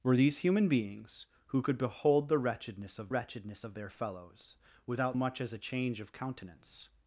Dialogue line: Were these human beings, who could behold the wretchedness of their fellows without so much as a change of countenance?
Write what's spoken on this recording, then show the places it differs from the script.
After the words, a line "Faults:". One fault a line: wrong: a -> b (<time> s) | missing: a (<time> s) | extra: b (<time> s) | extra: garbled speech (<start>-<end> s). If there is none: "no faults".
Were these human beings, who could behold the wretchedness of wretchedness of their fellows without much as a change of countenance?
Faults:
extra: wretchedness of (3.1 s)
missing: so (5.2 s)